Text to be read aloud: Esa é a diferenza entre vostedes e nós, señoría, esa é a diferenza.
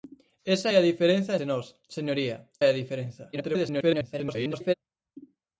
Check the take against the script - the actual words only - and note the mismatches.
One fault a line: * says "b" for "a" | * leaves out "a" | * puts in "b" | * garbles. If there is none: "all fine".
* leaves out "entre vostedes"
* leaves out "esa"
* garbles